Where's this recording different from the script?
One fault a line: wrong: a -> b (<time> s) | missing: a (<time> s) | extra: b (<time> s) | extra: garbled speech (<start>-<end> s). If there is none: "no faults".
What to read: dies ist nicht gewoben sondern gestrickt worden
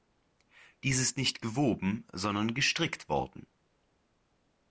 no faults